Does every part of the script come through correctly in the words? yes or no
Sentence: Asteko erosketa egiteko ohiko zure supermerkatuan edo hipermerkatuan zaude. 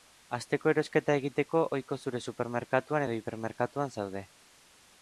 yes